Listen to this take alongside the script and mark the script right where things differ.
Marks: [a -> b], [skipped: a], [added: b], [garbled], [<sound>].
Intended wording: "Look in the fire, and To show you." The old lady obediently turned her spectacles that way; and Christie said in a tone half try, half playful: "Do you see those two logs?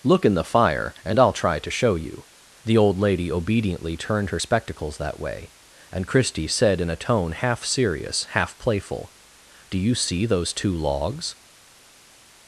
"Look in the fire, and [added: I'll try] To show you." The old lady obediently turned her spectacles that way; and Christie said in a tone half [try, -> serious] half playful: "Do you see those two logs?